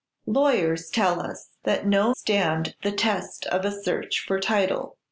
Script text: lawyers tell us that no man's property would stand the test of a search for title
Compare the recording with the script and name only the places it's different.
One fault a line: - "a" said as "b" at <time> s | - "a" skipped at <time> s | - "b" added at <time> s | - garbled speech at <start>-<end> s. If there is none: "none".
- "man's property would" skipped at 2.1 s